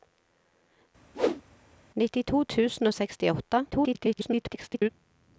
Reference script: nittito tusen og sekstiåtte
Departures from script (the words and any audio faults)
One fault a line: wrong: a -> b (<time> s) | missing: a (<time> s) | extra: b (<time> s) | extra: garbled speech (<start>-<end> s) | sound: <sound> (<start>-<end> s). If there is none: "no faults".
sound: whoosh (1.1-1.4 s)
extra: garbled speech (3.7-4.9 s)